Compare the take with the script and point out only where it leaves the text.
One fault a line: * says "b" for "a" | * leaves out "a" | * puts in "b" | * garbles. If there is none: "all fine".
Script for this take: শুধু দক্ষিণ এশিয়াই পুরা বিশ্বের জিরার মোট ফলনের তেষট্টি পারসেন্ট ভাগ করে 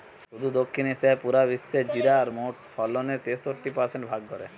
all fine